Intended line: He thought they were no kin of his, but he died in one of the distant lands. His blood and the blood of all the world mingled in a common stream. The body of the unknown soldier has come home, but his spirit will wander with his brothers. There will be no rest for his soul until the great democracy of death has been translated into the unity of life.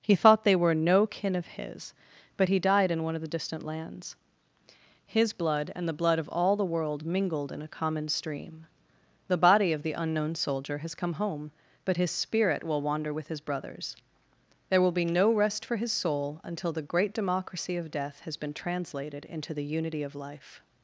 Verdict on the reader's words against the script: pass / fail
pass